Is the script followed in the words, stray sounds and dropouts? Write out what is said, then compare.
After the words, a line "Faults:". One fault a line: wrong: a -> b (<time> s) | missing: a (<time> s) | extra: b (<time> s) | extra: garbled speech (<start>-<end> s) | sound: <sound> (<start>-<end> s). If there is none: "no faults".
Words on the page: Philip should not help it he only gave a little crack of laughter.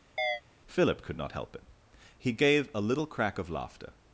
Philip could not help it he gave a little crack of laughter.
Faults:
sound: chirp (0.2-0.4 s)
wrong: should -> could (1.0 s)
missing: only (2.3 s)